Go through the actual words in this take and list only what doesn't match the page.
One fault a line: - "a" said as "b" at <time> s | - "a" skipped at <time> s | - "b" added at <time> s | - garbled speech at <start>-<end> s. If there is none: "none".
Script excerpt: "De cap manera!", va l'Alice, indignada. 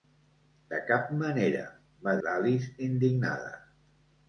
none